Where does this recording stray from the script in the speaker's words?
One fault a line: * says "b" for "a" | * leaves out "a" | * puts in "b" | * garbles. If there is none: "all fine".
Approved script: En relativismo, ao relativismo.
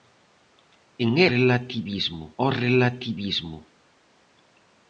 all fine